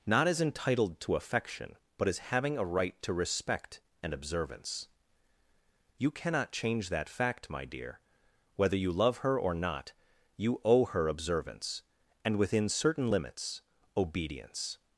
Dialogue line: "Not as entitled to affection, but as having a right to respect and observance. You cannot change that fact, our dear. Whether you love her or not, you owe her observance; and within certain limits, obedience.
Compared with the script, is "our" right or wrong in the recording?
wrong